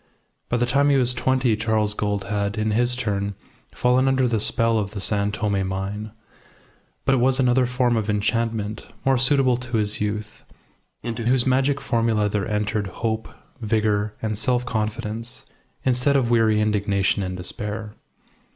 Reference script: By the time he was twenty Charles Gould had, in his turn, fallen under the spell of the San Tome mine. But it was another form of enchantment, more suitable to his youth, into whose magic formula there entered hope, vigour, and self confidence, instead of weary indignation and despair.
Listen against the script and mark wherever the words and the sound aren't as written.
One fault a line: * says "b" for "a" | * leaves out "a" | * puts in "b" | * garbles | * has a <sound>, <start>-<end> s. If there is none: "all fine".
all fine